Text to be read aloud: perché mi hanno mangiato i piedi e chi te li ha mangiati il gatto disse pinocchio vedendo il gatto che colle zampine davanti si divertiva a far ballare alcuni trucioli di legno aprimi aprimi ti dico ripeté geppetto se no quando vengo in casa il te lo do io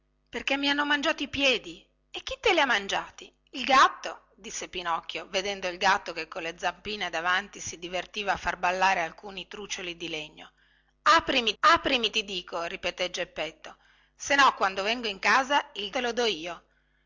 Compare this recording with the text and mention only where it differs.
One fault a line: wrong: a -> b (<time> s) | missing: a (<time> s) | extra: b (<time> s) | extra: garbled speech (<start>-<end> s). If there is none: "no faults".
no faults